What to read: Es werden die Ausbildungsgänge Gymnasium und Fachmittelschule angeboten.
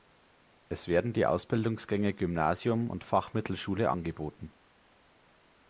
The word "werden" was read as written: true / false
true